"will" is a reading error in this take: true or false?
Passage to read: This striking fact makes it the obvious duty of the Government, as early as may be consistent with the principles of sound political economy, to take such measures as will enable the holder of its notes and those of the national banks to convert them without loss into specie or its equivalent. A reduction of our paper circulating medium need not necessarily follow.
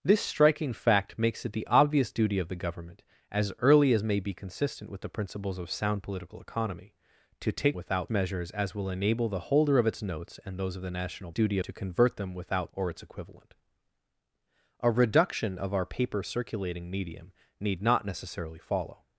false